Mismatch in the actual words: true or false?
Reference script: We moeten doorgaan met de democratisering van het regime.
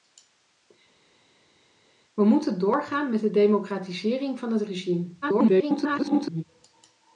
true